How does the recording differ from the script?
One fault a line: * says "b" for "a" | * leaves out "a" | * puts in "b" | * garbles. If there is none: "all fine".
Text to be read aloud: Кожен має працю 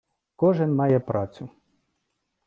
all fine